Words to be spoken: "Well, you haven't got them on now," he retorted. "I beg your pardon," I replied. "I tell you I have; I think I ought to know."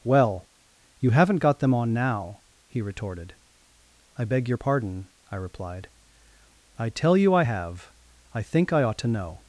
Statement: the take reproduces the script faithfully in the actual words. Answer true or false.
true